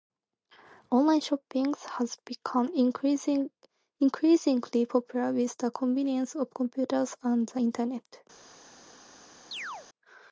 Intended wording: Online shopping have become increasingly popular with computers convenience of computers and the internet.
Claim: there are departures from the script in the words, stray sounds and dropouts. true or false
true